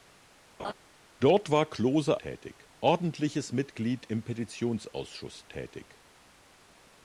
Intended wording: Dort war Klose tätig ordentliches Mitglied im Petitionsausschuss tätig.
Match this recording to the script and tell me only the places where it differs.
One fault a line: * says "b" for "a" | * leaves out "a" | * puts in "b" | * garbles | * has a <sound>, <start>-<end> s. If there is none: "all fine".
* has a laugh, 0.6-0.7 s